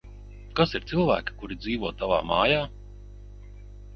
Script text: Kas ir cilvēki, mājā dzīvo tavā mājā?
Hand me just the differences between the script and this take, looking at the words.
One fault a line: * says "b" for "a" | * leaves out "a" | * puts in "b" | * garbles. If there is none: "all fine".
* says "kuri" for "mājā"